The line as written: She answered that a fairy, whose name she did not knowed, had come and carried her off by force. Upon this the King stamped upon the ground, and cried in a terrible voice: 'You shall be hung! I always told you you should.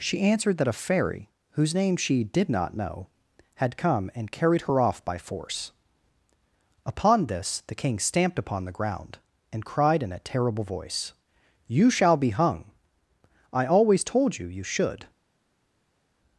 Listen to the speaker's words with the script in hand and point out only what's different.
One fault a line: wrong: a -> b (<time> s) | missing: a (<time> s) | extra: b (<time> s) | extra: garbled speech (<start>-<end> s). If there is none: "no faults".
wrong: knowed -> know (2.8 s)